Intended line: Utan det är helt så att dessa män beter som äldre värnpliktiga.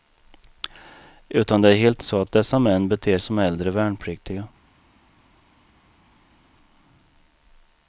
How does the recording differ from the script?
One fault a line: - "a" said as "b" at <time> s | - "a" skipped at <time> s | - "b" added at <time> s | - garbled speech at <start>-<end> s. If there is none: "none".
none